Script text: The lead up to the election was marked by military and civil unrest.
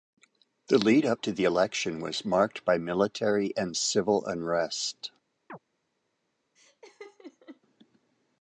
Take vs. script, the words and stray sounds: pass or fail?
fail